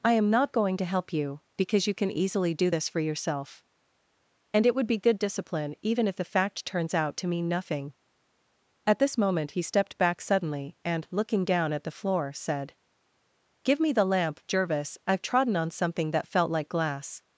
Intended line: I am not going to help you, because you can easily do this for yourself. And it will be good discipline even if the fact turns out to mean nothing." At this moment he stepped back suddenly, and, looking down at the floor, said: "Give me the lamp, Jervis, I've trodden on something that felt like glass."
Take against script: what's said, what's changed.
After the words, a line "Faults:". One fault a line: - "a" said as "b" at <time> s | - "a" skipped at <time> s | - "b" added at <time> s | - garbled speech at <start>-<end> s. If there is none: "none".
I am not going to help you, because you can easily do this for yourself. And it would be good discipline even if the fact turns out to mean nothing." At this moment he stepped back suddenly, and, looking down at the floor, said: "Give me the lamp, Jervis, I've trodden on something that felt like glass."
Faults:
- "will" said as "would" at 4.7 s